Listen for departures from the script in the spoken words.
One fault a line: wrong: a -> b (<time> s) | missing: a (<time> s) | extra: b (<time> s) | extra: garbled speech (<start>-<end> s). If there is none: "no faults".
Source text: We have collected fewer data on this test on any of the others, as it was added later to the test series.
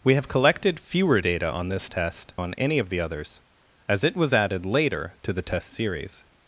no faults